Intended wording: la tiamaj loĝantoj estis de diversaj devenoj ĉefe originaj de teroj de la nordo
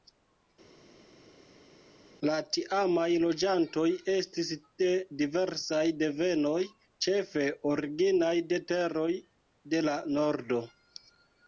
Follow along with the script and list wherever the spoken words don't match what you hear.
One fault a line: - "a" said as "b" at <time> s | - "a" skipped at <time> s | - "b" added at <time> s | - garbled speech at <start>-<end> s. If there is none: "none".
none